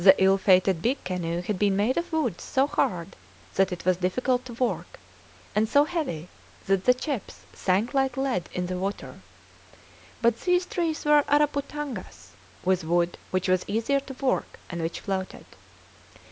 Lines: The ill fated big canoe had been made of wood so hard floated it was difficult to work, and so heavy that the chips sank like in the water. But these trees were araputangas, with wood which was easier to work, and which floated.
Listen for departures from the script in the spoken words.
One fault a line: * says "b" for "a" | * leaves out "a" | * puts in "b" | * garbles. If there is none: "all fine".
* says "that" for "floated"
* puts in "lead"